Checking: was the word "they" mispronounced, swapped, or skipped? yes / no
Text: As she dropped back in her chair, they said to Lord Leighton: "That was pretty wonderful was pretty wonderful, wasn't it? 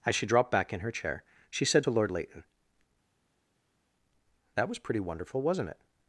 yes